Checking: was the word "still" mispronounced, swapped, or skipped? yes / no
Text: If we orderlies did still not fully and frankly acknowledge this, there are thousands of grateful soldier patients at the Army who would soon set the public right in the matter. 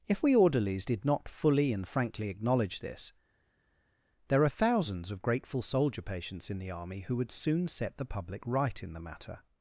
yes